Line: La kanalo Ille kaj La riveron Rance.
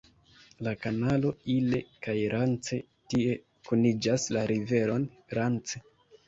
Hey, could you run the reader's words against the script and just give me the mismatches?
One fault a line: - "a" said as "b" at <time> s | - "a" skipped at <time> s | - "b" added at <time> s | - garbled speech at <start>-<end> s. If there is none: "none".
- "Rance tie kuniĝas" added at 2.4 s